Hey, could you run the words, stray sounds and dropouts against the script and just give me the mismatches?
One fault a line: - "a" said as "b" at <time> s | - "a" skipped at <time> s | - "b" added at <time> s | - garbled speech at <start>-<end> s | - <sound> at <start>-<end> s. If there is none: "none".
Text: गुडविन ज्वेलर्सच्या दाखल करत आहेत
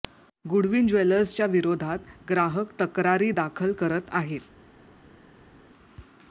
- "विरोधात ग्राहक तक्रारी" added at 1.5 s